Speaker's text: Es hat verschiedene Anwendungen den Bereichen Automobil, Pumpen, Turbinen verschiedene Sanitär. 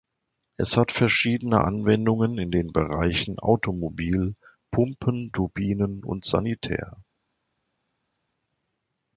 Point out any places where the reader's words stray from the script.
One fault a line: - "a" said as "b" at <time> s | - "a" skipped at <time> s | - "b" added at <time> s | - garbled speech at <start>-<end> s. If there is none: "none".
- "in" added at 2.4 s
- "verschiedene" said as "und" at 6.0 s